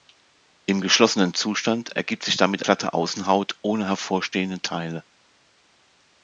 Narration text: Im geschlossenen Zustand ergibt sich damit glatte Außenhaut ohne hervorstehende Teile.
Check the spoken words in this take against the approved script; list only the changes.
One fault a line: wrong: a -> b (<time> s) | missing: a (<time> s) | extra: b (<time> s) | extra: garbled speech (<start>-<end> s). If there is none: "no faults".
no faults